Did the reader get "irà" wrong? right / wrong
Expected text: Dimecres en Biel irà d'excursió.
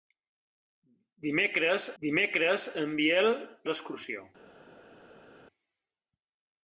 wrong